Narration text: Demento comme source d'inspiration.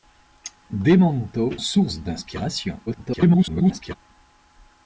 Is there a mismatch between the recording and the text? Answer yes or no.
yes